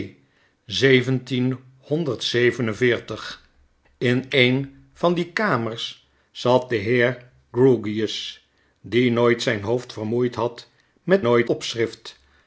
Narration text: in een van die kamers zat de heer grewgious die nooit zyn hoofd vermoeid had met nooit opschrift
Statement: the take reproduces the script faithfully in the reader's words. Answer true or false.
true